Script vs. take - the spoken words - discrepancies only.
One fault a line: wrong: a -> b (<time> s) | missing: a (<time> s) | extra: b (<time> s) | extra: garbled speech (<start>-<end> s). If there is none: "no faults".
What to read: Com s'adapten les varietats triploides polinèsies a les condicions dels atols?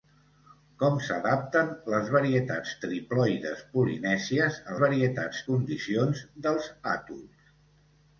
wrong: les -> varietats (4.8 s)